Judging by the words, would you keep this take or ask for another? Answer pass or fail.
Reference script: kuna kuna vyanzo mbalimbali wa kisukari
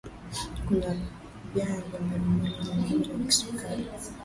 fail